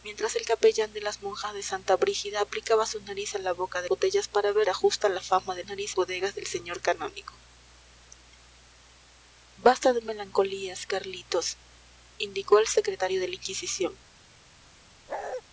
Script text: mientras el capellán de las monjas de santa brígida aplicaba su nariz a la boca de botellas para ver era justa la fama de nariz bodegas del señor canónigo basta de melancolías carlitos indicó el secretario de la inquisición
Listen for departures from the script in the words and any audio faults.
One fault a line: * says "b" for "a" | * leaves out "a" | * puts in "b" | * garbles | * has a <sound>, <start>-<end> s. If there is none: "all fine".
* has a bark, 15.1-15.4 s